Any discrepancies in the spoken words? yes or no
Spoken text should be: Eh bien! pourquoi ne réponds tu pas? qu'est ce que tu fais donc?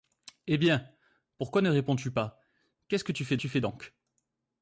yes